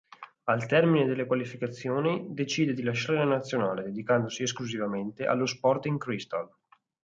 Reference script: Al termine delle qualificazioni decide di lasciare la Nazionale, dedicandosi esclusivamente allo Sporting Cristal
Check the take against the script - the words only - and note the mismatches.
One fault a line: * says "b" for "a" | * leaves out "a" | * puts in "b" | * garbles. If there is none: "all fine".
all fine